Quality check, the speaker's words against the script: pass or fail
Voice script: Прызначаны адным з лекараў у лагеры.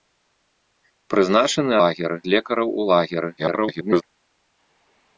fail